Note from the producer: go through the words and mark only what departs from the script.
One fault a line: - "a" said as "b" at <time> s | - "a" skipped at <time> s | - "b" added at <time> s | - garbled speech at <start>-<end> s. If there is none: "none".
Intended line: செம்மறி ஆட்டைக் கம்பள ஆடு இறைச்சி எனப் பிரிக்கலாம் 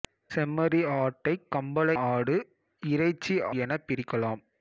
none